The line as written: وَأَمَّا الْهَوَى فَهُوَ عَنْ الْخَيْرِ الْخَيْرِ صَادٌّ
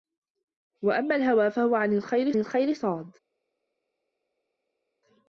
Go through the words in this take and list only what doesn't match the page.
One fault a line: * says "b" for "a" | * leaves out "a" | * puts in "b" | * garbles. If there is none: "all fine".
all fine